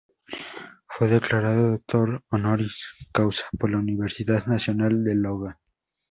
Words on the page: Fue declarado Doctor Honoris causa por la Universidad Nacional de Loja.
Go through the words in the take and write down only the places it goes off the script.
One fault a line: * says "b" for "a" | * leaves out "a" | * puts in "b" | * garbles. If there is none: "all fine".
all fine